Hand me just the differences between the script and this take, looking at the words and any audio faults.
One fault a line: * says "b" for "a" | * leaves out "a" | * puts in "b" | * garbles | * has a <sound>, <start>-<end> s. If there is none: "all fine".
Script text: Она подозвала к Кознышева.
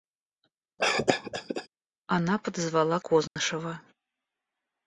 * has a cough, 0.8-1.7 s
* has a dropout, 3.3-3.4 s